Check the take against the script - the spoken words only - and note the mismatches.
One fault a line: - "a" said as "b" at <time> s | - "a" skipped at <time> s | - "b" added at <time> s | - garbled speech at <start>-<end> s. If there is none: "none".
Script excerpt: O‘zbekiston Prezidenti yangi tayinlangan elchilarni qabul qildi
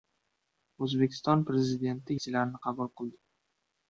- "yangi tayinlangan" skipped at 2.2 s